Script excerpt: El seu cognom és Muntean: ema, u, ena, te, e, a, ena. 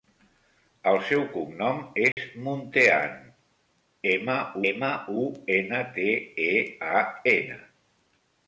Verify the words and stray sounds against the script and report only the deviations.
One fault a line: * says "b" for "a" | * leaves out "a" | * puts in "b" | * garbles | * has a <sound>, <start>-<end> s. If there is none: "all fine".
* has a dropout, 2.1-2.2 s
* puts in "ema"